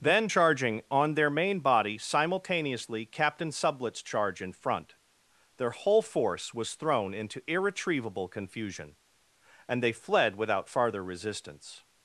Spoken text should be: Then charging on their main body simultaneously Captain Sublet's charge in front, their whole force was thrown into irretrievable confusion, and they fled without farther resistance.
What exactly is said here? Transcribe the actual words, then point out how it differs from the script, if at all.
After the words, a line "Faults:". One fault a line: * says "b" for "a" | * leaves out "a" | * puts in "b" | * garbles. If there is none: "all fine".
Then charging on their main body simultaneously Captain Sublet's charge in front, their whole force was thrown into irretrievable confusion, and they fled without farther resistance.
Faults:
all fine